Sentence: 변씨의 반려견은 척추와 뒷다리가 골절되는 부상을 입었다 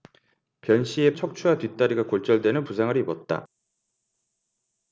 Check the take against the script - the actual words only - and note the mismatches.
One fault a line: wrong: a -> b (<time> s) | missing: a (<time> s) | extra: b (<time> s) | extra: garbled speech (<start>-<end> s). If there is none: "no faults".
missing: 반려견은 (1.1 s)